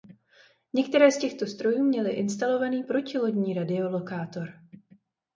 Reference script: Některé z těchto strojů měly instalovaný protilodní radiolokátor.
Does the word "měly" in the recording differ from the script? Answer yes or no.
no